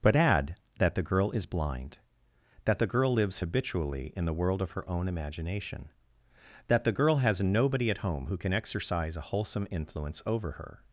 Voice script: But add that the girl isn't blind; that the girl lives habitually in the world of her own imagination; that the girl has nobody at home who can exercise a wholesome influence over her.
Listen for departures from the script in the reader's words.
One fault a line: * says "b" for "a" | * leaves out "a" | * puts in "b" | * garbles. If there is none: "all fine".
* says "is" for "isn't"